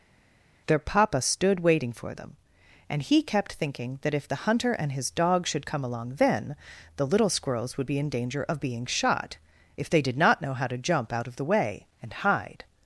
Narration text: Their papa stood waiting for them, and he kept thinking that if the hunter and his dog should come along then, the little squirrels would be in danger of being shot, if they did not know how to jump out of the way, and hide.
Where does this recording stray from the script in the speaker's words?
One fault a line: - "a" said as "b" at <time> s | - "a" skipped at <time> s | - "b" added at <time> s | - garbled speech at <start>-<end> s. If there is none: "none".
none